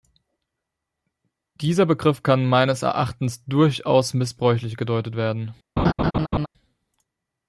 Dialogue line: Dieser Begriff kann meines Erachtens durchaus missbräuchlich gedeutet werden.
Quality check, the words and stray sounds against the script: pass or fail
fail